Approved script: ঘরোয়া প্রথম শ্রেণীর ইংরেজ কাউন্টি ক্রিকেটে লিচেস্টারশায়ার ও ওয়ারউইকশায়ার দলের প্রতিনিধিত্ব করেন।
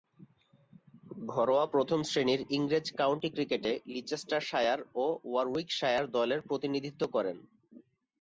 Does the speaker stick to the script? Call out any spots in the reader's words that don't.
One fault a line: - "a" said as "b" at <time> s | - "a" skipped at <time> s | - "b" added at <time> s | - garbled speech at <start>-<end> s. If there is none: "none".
none